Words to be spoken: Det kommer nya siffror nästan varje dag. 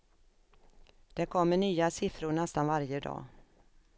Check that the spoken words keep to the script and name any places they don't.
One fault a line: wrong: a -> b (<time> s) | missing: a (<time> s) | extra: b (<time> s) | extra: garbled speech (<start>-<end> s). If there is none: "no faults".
no faults